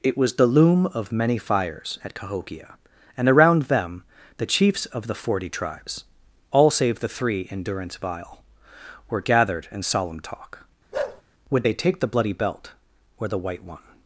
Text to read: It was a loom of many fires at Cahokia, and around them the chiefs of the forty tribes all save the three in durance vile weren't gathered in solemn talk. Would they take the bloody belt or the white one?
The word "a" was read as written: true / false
false